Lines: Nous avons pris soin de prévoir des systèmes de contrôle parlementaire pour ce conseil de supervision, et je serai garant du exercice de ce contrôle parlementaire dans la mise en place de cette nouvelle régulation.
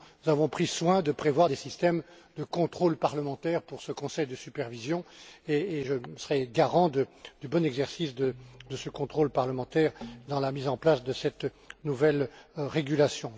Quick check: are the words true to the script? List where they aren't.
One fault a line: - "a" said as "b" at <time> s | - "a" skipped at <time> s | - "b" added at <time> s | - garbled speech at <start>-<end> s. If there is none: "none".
- "bon" added at 7.5 s